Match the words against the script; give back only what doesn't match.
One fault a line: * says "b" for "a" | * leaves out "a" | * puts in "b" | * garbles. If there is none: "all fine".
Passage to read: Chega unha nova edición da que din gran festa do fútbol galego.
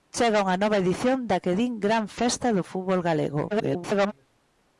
* garbles